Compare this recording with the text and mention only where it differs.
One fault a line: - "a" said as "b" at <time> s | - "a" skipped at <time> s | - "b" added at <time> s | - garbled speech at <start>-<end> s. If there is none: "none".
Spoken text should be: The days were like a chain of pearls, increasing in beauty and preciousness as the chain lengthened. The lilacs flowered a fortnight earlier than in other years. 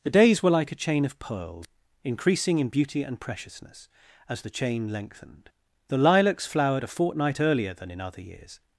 none